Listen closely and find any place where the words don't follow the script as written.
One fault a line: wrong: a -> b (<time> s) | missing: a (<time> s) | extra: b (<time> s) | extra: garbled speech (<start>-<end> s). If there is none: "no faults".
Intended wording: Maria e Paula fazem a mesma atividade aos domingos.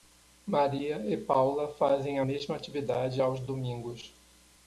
no faults